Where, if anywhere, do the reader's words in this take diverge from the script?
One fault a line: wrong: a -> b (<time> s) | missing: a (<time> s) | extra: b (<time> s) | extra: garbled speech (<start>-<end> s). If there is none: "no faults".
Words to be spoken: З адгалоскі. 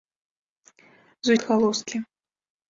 no faults